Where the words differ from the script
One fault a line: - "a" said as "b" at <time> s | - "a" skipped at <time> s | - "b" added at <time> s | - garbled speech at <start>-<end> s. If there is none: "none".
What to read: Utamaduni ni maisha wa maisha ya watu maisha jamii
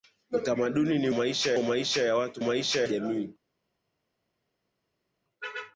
none